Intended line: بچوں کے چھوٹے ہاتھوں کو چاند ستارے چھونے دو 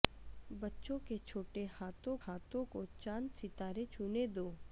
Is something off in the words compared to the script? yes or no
yes